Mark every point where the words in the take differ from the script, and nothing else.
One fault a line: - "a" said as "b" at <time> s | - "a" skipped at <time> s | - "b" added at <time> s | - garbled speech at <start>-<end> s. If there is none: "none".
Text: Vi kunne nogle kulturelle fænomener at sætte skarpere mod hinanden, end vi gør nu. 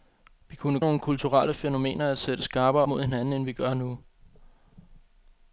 none